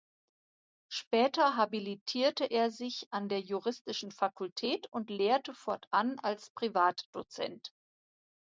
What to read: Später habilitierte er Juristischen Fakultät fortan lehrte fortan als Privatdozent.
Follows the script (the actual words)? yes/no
no